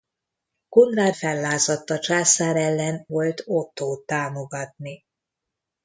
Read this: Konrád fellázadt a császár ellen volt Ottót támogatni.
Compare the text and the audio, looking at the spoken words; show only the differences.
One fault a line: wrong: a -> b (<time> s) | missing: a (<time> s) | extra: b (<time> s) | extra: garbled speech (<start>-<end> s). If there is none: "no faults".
no faults